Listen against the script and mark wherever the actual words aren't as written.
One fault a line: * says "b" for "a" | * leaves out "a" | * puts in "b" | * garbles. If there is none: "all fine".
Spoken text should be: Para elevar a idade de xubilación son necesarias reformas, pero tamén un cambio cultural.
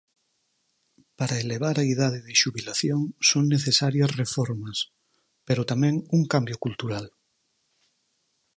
all fine